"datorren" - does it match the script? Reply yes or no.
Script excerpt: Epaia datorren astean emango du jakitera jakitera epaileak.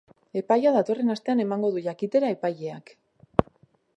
yes